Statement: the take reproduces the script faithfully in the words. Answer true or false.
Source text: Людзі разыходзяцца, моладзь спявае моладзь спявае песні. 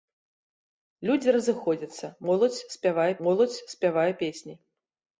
true